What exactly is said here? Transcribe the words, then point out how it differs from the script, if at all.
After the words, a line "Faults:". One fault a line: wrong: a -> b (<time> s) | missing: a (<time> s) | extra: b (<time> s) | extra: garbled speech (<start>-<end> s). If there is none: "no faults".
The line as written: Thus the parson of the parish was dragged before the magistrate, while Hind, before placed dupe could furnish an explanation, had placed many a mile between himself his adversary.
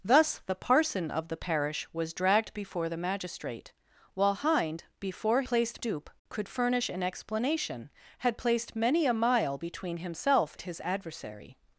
Thus the parson of the parish was dragged before the magistrate, while Hind, before placed dupe could furnish an explanation, had placed many a mile between himself his adversary.
Faults:
no faults